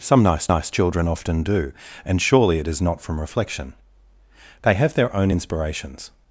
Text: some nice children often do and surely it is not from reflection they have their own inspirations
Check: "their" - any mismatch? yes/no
no